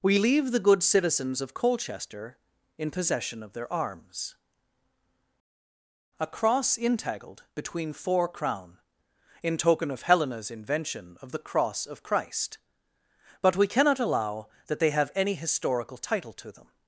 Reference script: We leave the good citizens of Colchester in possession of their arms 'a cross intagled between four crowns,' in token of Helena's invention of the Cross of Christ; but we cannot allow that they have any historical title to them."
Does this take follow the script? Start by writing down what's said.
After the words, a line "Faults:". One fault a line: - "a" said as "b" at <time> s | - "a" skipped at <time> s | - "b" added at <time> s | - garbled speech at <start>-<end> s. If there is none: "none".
We leave the good citizens of Colchester in possession of their arms 'a cross intagled between four crown,' in token of Helena's invention of the Cross of Christ; but we cannot allow that they have any historical title to them."
Faults:
- "crowns" said as "crown" at 8.3 s